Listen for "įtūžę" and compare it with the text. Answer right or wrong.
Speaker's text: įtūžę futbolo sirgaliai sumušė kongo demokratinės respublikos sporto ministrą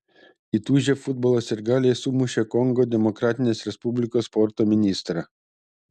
right